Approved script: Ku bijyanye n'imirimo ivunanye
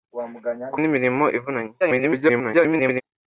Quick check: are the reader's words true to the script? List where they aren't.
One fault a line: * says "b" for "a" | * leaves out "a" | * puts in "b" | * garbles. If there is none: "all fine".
* leaves out "bijyanye"
* garbles